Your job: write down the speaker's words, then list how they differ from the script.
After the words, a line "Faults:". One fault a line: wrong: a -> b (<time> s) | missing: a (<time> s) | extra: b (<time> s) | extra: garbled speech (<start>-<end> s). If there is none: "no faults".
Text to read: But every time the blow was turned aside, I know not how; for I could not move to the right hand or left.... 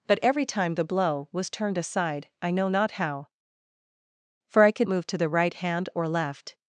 But every time the blow was turned aside, I know not how; for I could move to the right hand or left....
Faults:
missing: not (4.9 s)